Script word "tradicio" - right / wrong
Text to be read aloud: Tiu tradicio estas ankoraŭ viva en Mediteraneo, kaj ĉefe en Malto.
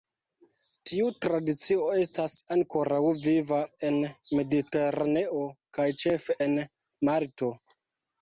right